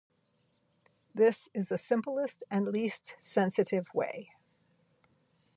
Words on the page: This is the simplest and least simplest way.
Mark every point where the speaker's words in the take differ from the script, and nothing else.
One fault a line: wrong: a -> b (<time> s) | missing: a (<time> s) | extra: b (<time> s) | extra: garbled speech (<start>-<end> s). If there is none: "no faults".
wrong: simplest -> sensitive (3.2 s)